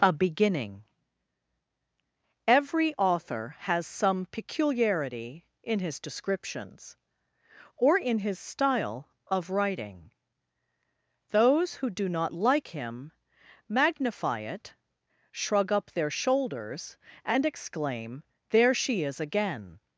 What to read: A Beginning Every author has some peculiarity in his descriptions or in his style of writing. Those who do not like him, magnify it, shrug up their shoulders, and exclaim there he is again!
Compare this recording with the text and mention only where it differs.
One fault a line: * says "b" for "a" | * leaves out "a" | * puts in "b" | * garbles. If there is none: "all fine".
* says "she" for "he"